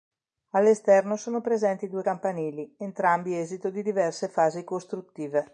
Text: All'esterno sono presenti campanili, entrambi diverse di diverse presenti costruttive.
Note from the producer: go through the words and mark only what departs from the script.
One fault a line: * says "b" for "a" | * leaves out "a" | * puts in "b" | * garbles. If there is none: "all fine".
* puts in "due"
* says "esito" for "diverse"
* says "fasi" for "presenti"